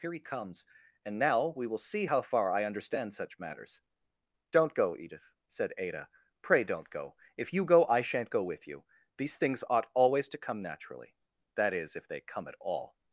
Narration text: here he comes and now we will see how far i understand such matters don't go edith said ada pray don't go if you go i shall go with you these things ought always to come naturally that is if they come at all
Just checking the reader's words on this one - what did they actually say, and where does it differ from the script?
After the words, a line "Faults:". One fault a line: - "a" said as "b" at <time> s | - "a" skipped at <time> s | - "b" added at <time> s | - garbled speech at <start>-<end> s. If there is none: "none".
here he comes and now we will see how far i understand such matters don't go edith said ada pray don't go if you go i shan't go with you these things ought always to come naturally that is if they come at all
Faults:
- "shall" said as "shan't" at 8.0 s